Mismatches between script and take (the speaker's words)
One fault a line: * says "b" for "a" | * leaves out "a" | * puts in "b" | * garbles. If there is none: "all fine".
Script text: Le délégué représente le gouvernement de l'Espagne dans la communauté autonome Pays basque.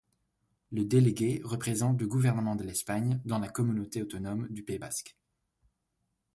* puts in "du"